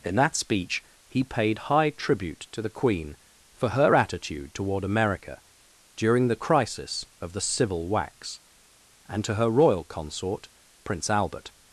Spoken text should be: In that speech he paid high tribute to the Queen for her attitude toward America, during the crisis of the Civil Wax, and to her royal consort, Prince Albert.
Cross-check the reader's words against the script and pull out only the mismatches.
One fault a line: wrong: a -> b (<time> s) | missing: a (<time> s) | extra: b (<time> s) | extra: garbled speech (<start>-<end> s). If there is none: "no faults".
no faults